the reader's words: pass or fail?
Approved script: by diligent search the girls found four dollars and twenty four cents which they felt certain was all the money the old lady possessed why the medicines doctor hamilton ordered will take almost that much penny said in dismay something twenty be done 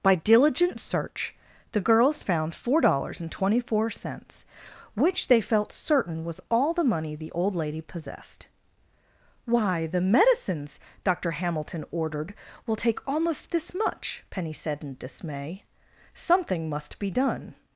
fail